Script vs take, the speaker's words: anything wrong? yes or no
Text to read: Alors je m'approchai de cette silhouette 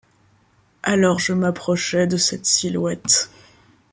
no